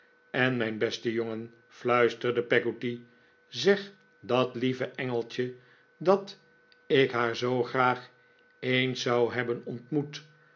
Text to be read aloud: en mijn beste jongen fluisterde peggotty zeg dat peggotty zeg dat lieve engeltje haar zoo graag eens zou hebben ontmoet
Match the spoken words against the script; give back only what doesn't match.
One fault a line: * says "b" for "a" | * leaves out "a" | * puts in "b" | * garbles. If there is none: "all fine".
* says "lieve engeltje" for "peggotty zeg"
* says "ik" for "lieve engeltje"